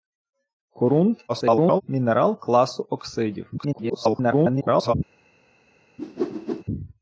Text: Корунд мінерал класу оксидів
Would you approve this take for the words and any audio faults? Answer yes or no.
no